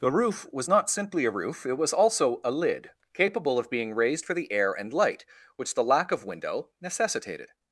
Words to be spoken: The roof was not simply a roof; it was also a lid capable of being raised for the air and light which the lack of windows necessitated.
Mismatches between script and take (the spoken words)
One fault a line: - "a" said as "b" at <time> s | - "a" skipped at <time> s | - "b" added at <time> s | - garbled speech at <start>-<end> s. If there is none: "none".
- "windows" said as "window" at 6.2 s